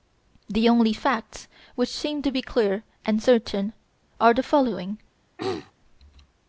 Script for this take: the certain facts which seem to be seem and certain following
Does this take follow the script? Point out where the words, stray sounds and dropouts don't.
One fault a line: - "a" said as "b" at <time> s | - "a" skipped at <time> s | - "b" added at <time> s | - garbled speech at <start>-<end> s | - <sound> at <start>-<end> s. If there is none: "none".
- "certain" said as "only" at 0.7 s
- "seem" said as "clear" at 2.4 s
- "are the" added at 4.2 s
- throat clearing at 5.4-5.7 s